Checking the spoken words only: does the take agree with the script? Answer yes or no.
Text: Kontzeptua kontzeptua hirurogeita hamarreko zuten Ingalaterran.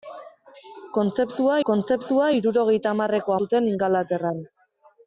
yes